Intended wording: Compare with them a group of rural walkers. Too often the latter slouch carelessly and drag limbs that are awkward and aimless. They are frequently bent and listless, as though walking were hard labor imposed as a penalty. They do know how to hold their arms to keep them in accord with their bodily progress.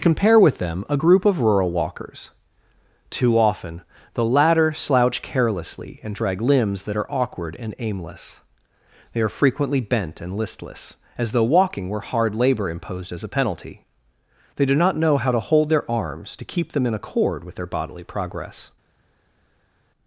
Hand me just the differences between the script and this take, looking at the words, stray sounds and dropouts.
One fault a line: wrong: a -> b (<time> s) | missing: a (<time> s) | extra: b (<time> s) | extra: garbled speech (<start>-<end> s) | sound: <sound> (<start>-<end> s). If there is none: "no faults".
extra: not (14.7 s)